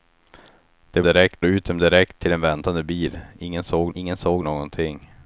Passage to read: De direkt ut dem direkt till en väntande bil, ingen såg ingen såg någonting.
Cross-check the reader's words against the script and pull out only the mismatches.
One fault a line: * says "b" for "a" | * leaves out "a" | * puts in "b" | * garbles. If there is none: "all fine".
all fine